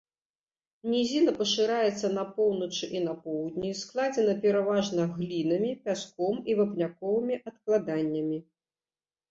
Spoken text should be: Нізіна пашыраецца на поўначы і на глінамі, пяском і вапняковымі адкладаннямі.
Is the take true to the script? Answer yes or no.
no